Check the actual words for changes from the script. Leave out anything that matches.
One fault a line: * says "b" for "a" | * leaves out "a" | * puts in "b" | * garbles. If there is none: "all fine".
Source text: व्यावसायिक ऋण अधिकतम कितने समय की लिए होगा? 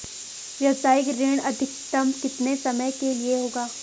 * says "के" for "की"